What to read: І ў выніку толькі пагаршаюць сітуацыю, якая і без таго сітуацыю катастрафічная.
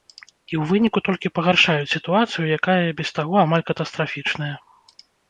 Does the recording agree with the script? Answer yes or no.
no